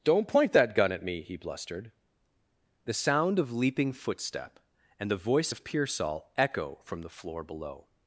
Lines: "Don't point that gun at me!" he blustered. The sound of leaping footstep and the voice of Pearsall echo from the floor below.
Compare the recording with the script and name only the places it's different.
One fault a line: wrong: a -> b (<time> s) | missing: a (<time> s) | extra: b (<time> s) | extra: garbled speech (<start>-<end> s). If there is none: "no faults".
no faults